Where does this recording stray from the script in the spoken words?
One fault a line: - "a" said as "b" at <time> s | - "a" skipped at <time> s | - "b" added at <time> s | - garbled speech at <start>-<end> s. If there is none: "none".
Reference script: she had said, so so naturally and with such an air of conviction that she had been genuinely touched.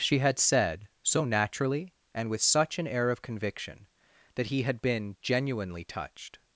- "so" skipped at 1.2 s
- "she" said as "he" at 4.5 s